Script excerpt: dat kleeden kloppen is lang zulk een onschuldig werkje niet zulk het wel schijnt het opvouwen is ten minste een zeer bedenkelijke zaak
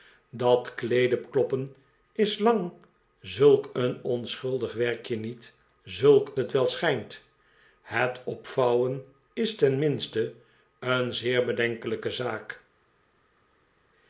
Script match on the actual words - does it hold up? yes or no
yes